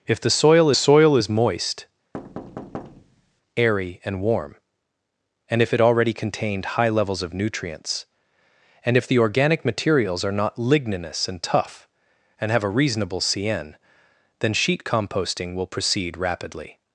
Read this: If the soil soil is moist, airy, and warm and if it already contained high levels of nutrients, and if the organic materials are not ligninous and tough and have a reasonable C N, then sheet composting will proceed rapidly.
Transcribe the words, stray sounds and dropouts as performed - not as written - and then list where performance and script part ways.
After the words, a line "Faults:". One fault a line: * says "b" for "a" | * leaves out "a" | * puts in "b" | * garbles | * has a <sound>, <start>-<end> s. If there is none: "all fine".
If the soil soil is moist, airy, and warm and if it already contained high levels of nutrients, and if the organic materials are not ligninous and tough and have a reasonable C N, then sheet composting will proceed rapidly.
Faults:
* has a thud, 2.1-3.4 s